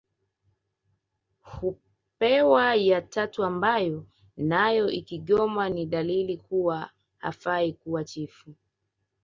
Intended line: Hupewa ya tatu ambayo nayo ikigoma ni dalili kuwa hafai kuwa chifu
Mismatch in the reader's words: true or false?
false